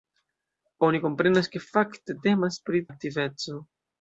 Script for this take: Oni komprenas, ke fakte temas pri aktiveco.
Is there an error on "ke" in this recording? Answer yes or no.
no